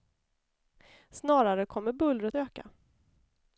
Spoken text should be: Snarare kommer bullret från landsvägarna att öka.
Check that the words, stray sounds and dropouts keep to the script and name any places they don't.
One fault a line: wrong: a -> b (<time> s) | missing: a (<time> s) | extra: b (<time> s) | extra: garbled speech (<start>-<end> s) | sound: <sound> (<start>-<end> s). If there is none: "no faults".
missing: från landsvägarna att (2.4 s)